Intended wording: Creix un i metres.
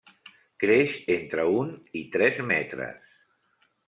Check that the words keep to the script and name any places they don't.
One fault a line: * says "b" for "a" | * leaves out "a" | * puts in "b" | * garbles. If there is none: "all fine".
* puts in "entre"
* puts in "tres"